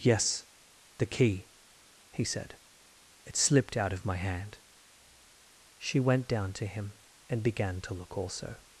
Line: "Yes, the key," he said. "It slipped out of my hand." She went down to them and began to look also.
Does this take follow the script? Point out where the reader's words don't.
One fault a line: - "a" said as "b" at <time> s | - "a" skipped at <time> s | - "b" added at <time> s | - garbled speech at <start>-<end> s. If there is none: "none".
- "them" said as "him" at 6.7 s